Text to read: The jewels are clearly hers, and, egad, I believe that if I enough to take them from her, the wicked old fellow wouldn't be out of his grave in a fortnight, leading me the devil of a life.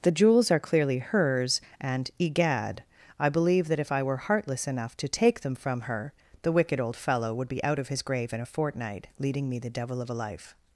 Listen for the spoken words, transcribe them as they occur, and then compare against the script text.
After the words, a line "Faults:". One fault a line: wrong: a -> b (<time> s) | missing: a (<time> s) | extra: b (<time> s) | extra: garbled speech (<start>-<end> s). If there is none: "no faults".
The jewels are clearly hers, and, egad, I believe that if I were heartless enough to take them from her, the wicked old fellow would be out of his grave in a fortnight, leading me the devil of a life.
Faults:
extra: were heartless (4.0 s)
wrong: wouldn't -> would (7.3 s)